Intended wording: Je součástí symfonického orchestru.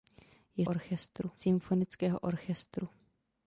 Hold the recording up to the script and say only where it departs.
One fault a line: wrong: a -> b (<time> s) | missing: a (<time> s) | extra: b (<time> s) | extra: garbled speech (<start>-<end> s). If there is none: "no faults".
wrong: součástí -> orchestru (0.6 s)